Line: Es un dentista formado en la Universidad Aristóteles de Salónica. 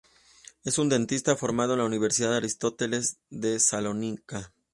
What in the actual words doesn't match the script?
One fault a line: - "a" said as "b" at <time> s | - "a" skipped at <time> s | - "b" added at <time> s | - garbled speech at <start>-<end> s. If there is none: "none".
none